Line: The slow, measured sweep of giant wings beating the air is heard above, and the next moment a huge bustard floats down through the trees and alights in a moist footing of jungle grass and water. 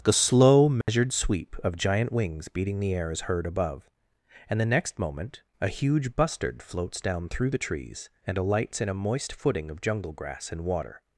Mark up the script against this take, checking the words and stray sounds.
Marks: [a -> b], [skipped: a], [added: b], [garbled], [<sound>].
The slow, measured [dropout] sweep of giant wings beating the air is heard above, and the next moment a huge bustard floats down through the trees and alights in a moist footing of jungle grass and water.